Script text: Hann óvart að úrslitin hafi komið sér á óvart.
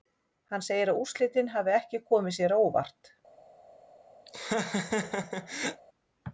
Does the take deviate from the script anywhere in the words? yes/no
yes